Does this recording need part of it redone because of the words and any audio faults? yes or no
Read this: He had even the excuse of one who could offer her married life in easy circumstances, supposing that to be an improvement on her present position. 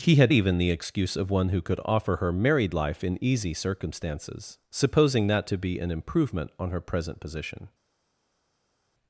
no